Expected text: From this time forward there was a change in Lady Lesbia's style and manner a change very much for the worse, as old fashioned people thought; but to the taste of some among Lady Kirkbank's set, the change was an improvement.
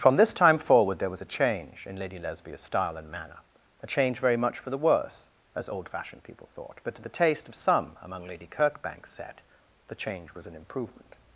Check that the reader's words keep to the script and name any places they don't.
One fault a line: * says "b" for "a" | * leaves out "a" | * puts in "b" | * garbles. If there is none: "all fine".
all fine